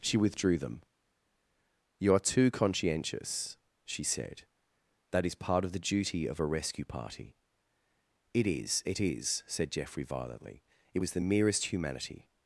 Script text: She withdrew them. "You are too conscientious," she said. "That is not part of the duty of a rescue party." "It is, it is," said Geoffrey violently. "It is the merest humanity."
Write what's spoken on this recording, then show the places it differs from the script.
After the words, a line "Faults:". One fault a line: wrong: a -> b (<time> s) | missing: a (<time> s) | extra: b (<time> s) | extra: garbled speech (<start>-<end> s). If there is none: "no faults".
She withdrew them. "You are too conscientious," she said. "That is part of the duty of a rescue party." "It is, it is," said Geoffrey violently. "It was the merest humanity."
Faults:
missing: not (5.3 s)
wrong: is -> was (11.0 s)